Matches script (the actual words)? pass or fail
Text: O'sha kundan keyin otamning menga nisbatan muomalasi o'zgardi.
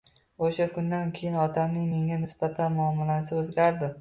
pass